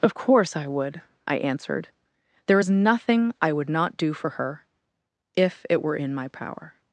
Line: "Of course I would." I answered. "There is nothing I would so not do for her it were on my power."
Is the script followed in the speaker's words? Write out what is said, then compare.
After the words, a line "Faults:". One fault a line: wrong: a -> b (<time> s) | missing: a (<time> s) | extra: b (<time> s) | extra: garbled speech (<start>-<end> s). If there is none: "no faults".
"Of course I would." I answered. "There is nothing I would not do for her if it were in my power."
Faults:
missing: so (3.7 s)
extra: if (5.3 s)
wrong: on -> in (6.0 s)